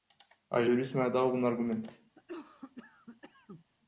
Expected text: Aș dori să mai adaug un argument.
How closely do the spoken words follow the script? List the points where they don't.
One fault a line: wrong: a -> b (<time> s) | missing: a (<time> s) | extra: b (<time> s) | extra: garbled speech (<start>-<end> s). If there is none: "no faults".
no faults